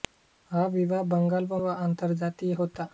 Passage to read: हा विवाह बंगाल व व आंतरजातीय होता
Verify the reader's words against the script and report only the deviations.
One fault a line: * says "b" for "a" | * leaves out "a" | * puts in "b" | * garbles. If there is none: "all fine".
all fine